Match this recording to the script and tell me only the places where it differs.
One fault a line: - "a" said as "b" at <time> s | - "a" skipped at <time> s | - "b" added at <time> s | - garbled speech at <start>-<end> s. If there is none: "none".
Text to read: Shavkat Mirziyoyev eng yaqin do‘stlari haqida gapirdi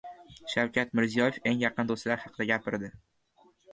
none